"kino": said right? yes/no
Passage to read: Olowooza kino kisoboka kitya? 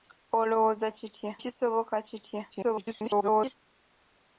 no